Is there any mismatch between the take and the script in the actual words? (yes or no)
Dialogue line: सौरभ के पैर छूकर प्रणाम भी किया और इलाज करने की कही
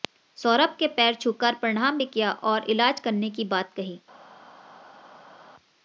yes